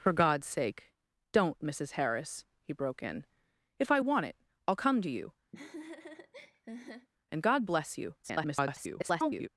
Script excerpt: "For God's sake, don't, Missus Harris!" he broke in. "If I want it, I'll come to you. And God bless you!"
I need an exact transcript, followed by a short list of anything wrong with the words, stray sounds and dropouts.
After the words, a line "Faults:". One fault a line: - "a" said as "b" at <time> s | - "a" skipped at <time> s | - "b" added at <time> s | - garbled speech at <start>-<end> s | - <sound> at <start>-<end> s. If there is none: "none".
"For God's sake, don't, Missus Harris!" he broke in. "If I want it, I'll come to you. And God bless you!" [garbled]
Faults:
- laugh at 5.5-7.1 s
- garbled speech at 8.2-9.5 s